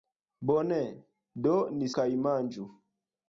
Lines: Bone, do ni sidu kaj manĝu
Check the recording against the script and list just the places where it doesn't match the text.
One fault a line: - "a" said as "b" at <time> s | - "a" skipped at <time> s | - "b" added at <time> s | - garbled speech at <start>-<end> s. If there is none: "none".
- "sidu" skipped at 1.9 s